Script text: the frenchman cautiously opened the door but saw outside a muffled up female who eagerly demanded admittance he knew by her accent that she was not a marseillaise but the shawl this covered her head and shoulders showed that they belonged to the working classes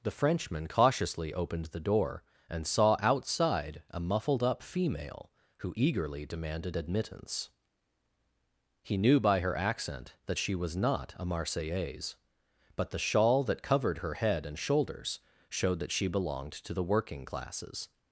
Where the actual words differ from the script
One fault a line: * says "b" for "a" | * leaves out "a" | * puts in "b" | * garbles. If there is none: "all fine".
* says "and" for "but"
* says "that" for "this"
* says "she" for "they"